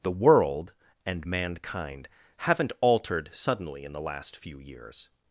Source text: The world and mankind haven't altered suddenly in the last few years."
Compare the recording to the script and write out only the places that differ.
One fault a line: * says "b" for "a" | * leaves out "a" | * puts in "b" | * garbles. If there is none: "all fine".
all fine